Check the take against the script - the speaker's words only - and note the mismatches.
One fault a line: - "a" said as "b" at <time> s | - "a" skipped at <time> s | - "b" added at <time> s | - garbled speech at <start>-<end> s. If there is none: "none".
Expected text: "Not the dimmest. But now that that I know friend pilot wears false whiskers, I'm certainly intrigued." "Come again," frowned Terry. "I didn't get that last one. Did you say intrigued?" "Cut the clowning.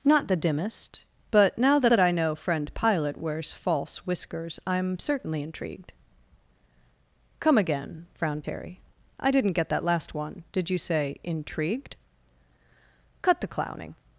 none